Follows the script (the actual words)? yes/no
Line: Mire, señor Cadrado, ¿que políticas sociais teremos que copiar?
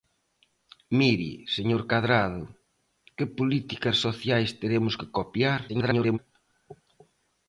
no